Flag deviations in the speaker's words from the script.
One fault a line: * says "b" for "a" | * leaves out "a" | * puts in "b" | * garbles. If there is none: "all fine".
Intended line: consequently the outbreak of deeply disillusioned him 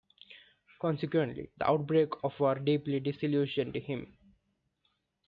* puts in "war"